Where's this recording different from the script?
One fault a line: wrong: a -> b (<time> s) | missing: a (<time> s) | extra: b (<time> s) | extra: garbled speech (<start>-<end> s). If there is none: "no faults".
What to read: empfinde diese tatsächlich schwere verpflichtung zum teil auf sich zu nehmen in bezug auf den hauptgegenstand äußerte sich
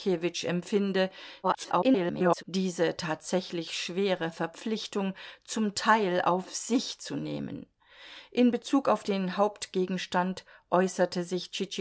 extra: garbled speech (1.4-2.4 s)